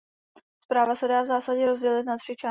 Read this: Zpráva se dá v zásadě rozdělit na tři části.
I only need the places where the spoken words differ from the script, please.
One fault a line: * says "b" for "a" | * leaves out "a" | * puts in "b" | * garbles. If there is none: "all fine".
all fine